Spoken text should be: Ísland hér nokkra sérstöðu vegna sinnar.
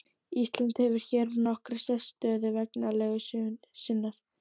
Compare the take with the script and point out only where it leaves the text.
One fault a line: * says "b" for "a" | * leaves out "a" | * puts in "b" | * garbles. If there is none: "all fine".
* puts in "hefur"
* puts in "legu"